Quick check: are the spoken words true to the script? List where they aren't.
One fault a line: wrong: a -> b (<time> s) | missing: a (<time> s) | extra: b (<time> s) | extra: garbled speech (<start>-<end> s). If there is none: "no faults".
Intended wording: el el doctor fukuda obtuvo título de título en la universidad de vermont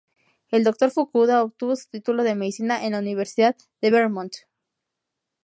missing: el (0.6 s)
extra: su (1.8 s)
wrong: título -> medicina (2.3 s)